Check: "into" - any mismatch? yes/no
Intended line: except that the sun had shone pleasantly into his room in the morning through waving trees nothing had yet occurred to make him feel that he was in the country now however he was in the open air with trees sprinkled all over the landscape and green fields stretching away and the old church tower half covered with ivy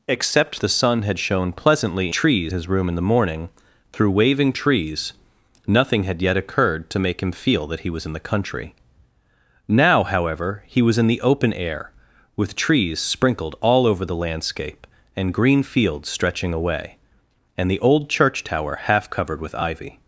yes